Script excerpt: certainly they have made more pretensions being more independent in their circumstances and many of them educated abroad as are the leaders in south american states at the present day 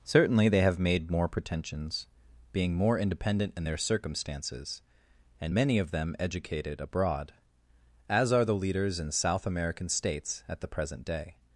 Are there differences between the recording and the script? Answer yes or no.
no